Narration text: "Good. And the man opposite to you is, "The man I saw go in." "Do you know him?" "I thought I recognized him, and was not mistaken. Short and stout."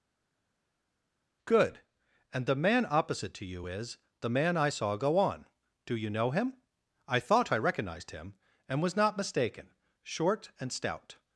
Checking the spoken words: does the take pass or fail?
fail